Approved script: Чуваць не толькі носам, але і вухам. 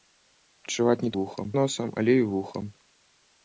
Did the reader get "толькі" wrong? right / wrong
wrong